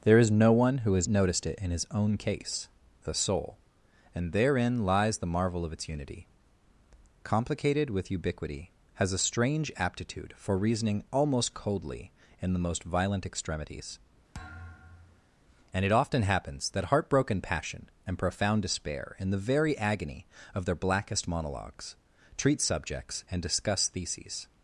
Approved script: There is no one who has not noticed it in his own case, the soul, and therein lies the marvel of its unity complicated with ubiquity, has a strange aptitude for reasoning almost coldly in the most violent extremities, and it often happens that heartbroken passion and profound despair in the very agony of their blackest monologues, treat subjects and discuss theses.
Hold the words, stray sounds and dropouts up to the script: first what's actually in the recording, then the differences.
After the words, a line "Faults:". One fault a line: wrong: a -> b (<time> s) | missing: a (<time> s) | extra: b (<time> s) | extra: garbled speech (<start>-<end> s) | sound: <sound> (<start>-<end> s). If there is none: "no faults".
There is no one who has noticed it in his own case, the soul, and therein lies the marvel of its unity complicated with ubiquity, has a strange aptitude for reasoning almost coldly in the most violent extremities, and it often happens that heartbroken passion and profound despair in the very agony of their blackest monologues, treat subjects and discuss theses.
Faults:
missing: not (1.1 s)
sound: thud (14.3-15.3 s)